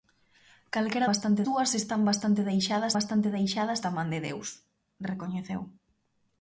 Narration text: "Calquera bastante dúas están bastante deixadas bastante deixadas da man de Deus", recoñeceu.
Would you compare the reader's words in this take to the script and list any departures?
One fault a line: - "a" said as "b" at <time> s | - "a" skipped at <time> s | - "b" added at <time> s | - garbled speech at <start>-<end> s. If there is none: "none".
none